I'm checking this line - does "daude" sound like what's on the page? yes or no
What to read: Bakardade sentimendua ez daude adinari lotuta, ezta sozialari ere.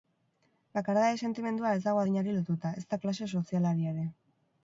no